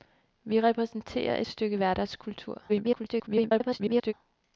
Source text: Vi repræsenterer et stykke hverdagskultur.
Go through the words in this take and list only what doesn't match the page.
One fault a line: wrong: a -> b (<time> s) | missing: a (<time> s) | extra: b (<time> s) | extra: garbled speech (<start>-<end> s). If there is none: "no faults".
missing: et (1.4 s)
extra: garbled speech (2.7-4.1 s)